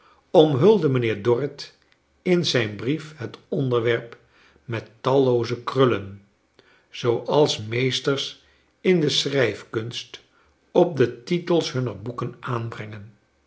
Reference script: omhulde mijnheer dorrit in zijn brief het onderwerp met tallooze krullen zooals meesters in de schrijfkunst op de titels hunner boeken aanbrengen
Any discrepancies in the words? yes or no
no